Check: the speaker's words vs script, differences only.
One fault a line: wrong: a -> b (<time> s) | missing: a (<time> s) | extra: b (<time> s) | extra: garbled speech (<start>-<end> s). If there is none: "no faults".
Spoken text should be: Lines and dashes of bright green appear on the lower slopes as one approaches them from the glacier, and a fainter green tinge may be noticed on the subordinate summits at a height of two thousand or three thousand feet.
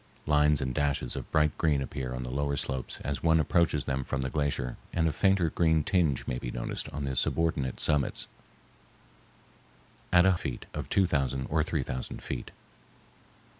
wrong: height -> feet (10.4 s)